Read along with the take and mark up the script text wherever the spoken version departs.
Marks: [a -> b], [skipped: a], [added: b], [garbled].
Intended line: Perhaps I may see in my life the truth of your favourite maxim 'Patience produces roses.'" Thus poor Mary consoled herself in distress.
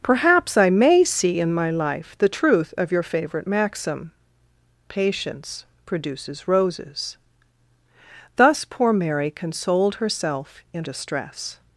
Perhaps I may see in my life the truth of your favourite maxim 'Patience produces roses.'" Thus poor Mary consoled herself in distress.